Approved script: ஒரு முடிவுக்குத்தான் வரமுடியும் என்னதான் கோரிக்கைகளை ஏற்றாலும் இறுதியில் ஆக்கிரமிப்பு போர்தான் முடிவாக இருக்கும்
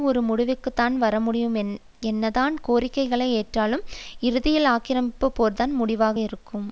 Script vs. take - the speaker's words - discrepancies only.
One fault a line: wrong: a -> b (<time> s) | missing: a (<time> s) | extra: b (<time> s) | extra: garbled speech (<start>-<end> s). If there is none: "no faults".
no faults